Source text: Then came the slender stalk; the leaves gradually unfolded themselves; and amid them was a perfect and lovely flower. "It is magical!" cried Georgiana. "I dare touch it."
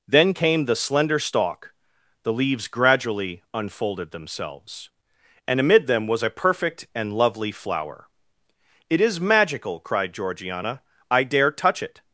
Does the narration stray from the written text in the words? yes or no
no